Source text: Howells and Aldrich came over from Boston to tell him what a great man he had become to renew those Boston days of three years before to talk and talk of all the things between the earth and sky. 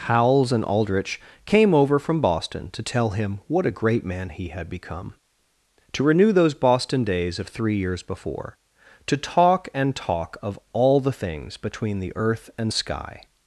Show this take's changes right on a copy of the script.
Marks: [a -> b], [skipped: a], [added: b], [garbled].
Howells and Aldrich came over from Boston to tell him what a great man he had become to renew those Boston days of three years before to talk and talk of all the things between the earth and sky.